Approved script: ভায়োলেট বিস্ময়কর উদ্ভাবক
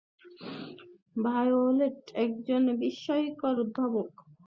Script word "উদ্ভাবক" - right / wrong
right